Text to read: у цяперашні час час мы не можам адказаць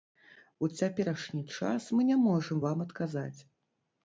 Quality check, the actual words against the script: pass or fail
fail